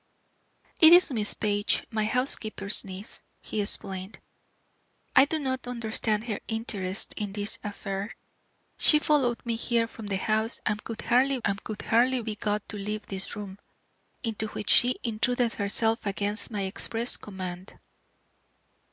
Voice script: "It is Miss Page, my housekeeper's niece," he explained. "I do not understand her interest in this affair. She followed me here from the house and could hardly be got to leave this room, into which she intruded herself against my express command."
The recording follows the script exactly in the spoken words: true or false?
false